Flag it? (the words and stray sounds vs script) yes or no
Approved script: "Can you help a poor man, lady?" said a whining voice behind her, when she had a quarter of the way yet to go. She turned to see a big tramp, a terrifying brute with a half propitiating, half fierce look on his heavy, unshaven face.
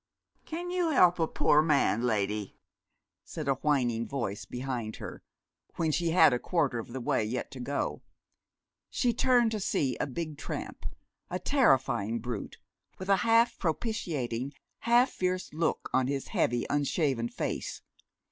no